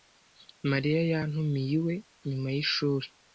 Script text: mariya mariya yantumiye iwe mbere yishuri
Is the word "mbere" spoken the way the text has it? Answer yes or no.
no